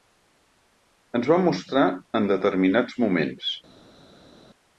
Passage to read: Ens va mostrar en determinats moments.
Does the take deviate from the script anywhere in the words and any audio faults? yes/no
no